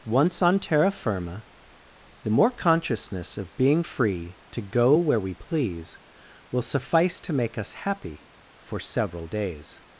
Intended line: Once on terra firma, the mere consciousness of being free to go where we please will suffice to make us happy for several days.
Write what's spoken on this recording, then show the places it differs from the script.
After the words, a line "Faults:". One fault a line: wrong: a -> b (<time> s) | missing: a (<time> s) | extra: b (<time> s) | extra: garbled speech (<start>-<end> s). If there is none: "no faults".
Once on terra firma, the more consciousness of being free to go where we please will suffice to make us happy for several days.
Faults:
wrong: mere -> more (2.3 s)